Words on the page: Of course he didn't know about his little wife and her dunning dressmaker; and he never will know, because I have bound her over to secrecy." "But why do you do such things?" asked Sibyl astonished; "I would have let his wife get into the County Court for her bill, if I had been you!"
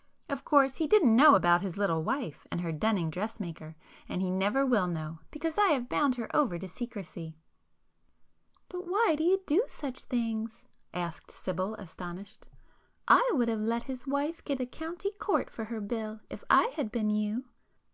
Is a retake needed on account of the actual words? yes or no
yes